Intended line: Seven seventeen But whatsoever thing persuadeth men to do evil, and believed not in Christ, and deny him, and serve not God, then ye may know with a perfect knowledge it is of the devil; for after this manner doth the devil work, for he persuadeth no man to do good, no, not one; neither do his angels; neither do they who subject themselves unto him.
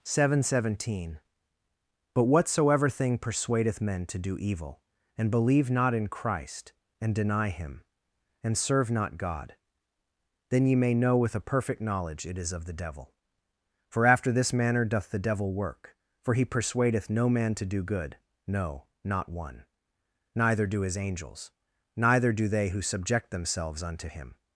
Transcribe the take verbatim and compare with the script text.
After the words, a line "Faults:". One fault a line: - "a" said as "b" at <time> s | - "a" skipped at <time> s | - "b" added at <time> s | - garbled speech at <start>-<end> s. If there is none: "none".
Seven seventeen But whatsoever thing persuadeth men to do evil, and believe not in Christ, and deny him, and serve not God, then ye may know with a perfect knowledge it is of the devil; for after this manner doth the devil work, for he persuadeth no man to do good, no, not one; neither do his angels; neither do they who subject themselves unto him.
Faults:
- "believed" said as "believe" at 5.3 s